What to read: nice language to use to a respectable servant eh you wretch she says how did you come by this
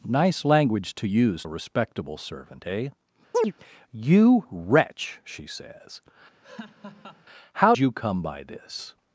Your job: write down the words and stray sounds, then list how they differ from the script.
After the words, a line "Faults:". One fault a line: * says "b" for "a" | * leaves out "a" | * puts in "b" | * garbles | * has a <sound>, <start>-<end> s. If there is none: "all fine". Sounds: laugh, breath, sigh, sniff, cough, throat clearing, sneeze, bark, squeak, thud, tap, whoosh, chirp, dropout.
nice language to use a respectable servant eh you wretch she says how you come by this
Faults:
* leaves out "to"
* has a chirp, 3.3-3.5 s
* has a laugh, 6.4-7.2 s
* leaves out "did"